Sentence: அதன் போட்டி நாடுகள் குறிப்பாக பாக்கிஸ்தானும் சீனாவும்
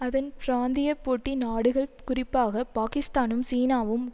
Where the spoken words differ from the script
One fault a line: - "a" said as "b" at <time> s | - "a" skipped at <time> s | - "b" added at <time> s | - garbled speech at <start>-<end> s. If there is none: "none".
- "பிராந்திய" added at 0.4 s